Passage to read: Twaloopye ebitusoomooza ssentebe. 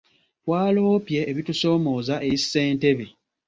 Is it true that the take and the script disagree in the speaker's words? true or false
true